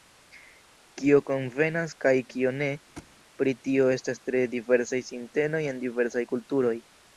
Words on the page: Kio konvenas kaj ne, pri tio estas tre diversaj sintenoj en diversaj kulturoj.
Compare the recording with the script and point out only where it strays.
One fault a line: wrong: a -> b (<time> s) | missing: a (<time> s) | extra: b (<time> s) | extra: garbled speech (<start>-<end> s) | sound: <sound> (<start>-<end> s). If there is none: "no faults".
extra: kio (2.3 s)
sound: thud (3.0-3.1 s)